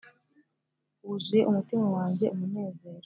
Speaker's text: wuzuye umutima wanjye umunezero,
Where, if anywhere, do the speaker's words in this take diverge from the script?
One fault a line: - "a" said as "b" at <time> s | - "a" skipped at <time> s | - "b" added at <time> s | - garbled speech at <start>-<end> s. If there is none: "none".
none